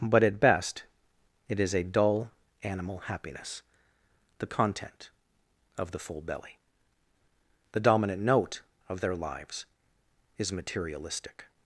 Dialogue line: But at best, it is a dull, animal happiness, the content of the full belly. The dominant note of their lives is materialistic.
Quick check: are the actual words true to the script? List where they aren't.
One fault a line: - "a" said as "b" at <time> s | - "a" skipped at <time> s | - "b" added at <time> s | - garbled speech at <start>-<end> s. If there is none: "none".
none